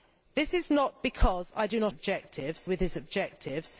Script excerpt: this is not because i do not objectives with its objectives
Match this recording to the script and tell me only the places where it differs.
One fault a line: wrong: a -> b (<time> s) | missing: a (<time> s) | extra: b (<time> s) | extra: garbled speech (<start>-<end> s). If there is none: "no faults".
no faults